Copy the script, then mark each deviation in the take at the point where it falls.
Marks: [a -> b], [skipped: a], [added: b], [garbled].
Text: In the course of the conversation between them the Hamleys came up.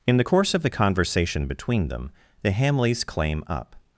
In the course of the conversation between them the Hamleys [came -> claim] up.